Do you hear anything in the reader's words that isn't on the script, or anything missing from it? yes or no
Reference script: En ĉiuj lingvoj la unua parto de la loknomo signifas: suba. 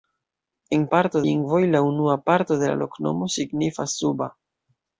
yes